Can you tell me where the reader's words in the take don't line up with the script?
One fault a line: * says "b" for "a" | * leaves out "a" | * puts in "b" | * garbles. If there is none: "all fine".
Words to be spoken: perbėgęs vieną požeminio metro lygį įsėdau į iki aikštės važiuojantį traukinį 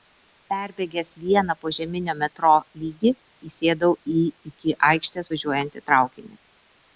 all fine